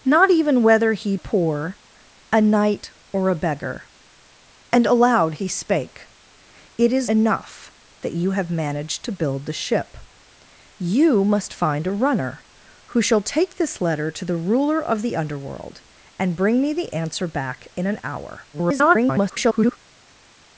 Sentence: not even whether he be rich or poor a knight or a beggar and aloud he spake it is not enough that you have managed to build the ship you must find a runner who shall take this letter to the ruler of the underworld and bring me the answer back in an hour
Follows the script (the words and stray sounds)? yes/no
no